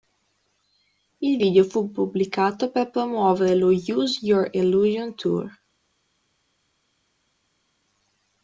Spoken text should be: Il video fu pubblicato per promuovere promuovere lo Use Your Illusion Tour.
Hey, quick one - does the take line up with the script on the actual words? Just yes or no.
no